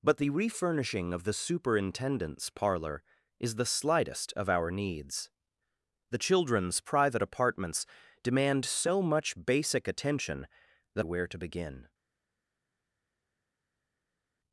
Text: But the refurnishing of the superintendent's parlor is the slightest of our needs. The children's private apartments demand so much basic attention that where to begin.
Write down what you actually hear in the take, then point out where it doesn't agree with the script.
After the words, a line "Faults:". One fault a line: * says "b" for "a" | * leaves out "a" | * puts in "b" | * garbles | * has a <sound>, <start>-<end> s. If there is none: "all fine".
But the refurnishing of the superintendent's parlor is the slightest of our needs. The children's private apartments demand so much basic attention that where to begin.
Faults:
all fine